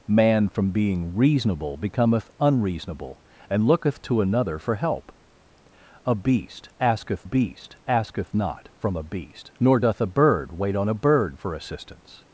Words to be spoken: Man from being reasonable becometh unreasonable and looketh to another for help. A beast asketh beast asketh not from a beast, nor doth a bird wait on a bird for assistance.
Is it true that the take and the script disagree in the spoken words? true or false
false